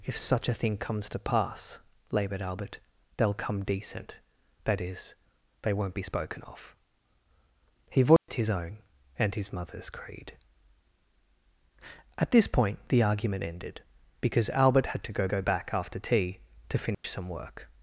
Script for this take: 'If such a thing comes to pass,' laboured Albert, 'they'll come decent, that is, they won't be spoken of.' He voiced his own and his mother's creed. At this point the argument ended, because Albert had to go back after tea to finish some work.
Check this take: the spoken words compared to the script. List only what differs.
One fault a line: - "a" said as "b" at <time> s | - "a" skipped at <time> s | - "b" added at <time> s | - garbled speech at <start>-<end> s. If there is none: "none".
- "go" added at 15.2 s